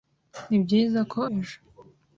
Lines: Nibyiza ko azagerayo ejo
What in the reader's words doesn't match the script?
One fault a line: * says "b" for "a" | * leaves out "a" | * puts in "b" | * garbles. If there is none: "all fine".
* leaves out "azagerayo"